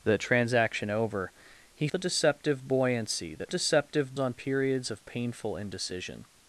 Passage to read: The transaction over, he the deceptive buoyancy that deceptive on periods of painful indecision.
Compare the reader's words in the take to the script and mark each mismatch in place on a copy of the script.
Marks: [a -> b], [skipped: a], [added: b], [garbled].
The transaction over, he the deceptive buoyancy that deceptive on periods of painful indecision.